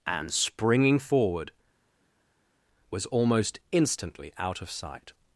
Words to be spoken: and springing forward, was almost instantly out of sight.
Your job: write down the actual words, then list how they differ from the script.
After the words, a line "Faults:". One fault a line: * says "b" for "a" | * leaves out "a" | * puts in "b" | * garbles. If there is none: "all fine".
and springing forward, was almost instantly out of sight.
Faults:
all fine